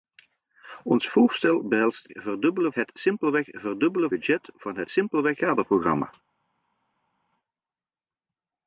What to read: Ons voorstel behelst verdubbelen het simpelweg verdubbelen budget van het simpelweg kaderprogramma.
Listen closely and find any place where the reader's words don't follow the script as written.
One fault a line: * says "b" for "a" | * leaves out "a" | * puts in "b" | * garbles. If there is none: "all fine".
all fine